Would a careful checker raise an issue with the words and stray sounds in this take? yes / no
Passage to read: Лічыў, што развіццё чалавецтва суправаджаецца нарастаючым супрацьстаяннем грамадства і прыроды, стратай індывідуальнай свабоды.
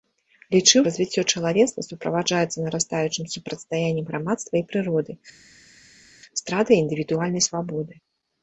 yes